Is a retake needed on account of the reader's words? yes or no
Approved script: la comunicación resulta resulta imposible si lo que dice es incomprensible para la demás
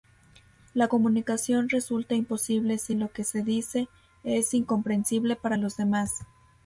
yes